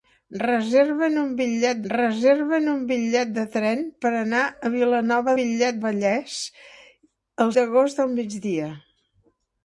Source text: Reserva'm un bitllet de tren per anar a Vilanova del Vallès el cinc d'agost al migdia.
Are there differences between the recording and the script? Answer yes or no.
yes